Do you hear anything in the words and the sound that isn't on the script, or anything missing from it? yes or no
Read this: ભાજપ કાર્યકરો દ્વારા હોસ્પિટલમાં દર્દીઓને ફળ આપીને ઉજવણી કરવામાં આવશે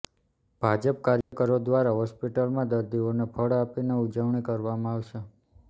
yes